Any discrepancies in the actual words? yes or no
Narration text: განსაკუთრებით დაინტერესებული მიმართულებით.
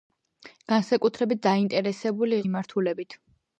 no